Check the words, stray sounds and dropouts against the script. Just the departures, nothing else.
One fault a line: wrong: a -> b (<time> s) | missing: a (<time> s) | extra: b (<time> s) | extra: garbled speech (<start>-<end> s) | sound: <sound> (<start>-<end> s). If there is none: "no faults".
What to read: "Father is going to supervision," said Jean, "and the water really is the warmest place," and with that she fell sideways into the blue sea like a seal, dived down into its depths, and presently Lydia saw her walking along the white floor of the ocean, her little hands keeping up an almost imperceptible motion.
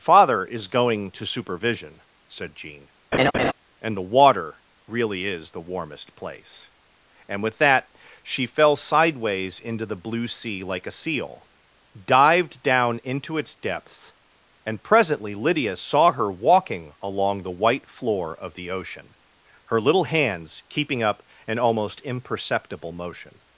sound: laugh (3.1-3.5 s)